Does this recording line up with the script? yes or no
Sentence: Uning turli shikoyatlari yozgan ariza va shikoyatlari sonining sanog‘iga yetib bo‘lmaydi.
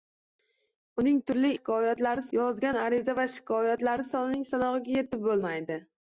yes